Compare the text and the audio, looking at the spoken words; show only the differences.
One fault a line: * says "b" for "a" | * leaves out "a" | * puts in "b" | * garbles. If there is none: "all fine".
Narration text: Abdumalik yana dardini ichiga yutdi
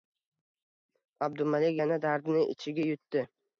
all fine